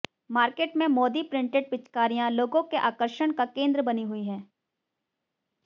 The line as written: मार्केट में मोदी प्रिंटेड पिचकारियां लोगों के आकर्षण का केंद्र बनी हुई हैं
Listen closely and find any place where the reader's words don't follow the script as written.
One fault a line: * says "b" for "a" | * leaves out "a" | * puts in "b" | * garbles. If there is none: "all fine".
all fine